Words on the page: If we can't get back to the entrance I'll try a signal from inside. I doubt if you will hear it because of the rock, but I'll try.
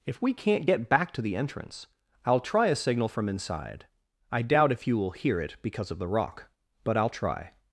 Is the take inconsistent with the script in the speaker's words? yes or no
no